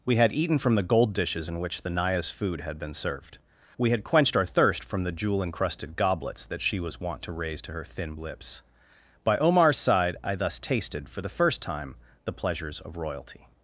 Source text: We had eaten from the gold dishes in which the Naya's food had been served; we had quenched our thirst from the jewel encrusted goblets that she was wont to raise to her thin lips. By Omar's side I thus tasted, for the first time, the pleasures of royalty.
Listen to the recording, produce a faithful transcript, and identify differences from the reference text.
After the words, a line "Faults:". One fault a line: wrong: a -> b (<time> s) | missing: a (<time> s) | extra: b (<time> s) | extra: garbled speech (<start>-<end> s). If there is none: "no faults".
We had eaten from the gold dishes in which the Naya's food had been served; we had quenched our thirst from the jewel encrusted goblets that she was wont to raise to her thin lips. By Omar's side I thus tasted, for the first time, the pleasures of royalty.
Faults:
no faults